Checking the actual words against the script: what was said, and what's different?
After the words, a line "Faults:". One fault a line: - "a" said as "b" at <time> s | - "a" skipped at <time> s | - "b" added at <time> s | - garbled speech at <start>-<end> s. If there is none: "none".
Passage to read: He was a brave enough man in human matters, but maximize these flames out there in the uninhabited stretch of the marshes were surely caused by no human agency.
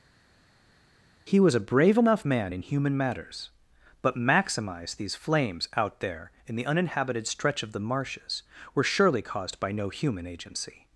He was a brave enough man in human matters, but maximize these flames out there in the uninhabited stretch of the marshes were surely caused by no human agency.
Faults:
none